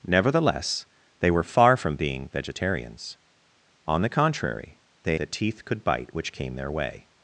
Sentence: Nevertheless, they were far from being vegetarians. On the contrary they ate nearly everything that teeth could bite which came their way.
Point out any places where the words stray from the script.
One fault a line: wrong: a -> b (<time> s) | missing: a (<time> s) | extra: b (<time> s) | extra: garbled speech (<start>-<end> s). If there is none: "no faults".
missing: ate nearly everything (5.2 s)